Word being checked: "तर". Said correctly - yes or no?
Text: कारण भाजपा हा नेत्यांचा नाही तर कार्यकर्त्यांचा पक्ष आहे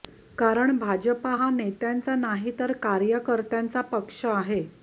yes